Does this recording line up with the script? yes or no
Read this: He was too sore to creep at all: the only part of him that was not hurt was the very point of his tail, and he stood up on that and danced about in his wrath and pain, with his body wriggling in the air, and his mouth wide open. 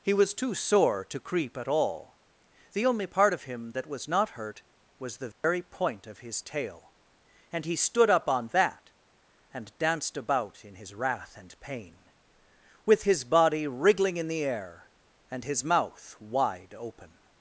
yes